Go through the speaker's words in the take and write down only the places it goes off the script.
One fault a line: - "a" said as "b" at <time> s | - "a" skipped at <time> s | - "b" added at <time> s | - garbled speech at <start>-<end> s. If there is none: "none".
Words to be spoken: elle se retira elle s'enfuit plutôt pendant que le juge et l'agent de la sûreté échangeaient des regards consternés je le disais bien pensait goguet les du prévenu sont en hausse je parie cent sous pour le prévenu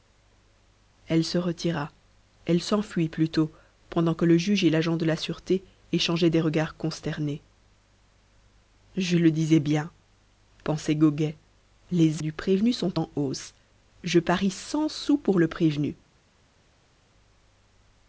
none